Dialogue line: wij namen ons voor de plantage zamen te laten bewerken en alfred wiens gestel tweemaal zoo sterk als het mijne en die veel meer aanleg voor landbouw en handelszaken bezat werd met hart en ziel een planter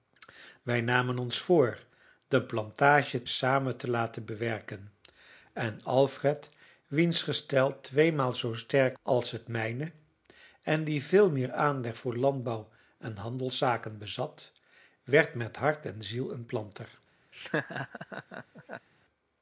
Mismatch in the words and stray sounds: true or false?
true